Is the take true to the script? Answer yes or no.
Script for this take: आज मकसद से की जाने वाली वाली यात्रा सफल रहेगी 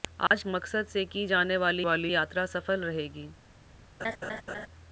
yes